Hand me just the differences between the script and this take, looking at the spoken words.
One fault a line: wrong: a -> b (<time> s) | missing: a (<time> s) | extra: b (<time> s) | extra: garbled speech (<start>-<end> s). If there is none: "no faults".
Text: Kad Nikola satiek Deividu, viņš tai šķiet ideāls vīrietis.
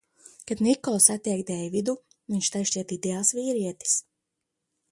no faults